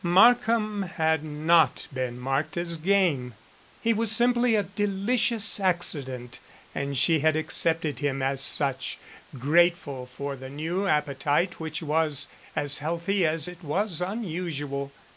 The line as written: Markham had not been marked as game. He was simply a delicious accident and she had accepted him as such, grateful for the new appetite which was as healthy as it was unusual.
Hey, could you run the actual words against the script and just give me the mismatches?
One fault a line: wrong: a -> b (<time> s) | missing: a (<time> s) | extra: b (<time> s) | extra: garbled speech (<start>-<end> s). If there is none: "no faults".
no faults